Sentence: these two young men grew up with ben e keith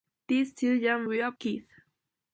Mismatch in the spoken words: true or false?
true